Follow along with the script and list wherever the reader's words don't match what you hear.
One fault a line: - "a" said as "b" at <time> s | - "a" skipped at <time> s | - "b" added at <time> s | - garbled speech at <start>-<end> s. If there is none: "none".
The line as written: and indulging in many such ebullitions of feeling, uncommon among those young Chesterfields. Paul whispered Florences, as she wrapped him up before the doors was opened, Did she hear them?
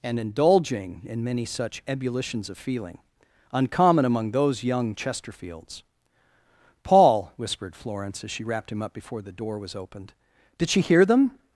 - "Florences" said as "Florence" at 7.8 s
- "doors" said as "door" at 9.3 s